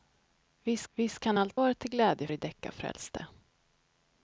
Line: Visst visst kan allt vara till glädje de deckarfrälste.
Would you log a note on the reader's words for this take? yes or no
no